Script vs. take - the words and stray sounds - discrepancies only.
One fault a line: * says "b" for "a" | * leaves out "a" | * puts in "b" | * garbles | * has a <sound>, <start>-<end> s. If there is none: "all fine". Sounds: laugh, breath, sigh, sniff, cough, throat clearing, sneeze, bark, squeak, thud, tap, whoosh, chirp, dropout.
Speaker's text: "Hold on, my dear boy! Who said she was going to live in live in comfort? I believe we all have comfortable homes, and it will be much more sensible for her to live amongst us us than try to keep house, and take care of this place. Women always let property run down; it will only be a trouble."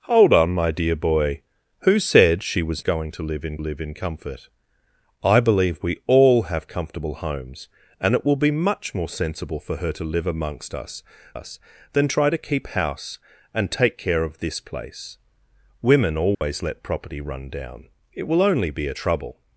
* has a dropout, 16.3-16.4 s